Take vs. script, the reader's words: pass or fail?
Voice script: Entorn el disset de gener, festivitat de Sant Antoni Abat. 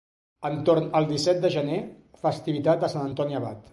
pass